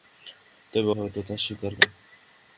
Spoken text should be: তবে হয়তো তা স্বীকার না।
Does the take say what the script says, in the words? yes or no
yes